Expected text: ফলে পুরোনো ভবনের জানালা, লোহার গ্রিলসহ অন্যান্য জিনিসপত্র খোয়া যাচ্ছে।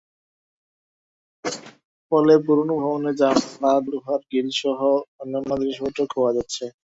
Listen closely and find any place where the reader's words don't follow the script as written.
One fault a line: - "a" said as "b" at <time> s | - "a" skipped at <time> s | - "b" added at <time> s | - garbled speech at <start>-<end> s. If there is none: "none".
none